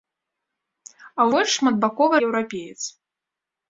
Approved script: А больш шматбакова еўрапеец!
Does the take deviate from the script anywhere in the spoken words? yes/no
no